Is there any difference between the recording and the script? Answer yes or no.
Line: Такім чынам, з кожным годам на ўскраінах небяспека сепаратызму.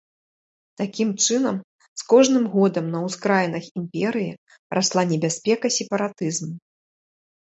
yes